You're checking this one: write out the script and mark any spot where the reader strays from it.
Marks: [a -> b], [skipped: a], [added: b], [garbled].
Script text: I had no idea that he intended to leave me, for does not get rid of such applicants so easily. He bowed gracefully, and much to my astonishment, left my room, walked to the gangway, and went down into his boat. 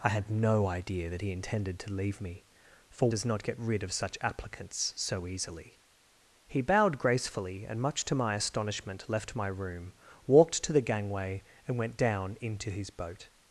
I had no idea that he intended to leave me, for does not get rid of such applicants so easily. He bowed gracefully, and much to my astonishment, left my room, walked to the gangway, and went down into his boat.